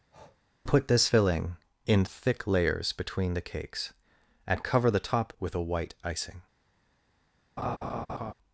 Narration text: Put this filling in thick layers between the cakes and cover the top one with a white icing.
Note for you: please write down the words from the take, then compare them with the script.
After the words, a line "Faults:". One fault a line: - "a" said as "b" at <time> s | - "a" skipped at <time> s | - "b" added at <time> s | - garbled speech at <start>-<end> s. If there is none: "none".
Put this filling in thick layers between the cakes and cover the top with a white icing.
Faults:
- "one" skipped at 5.3 s